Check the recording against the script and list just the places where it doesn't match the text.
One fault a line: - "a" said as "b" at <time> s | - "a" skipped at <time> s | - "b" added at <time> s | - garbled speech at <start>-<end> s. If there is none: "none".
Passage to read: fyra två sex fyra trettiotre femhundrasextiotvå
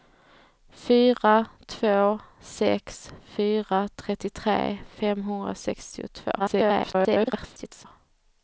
- garbled speech at 6.4-7.9 s